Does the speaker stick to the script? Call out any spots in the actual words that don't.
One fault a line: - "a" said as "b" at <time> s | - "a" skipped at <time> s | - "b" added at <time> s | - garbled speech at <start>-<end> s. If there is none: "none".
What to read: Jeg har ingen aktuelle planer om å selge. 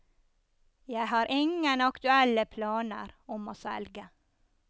none